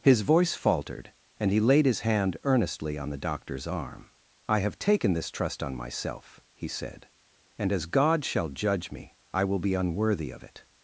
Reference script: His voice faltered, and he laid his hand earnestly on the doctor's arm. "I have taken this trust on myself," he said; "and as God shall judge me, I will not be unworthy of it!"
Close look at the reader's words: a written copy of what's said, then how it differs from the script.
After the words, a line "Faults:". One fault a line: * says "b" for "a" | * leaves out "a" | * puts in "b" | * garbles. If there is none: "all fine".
His voice faltered, and he laid his hand earnestly on the doctor's arm. "I have taken this trust on myself," he said; "and as God shall judge me, I will be unworthy of it!"
Faults:
* leaves out "not"